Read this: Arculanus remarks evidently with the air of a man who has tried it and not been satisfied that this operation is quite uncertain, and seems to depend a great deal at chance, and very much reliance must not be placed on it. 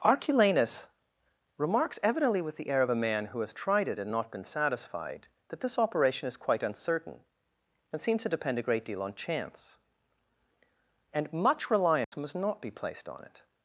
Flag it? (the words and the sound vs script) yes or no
yes